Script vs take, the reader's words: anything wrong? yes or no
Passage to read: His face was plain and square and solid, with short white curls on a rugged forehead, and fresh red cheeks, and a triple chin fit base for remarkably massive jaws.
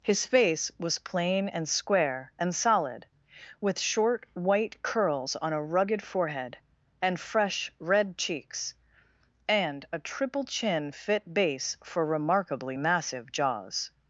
no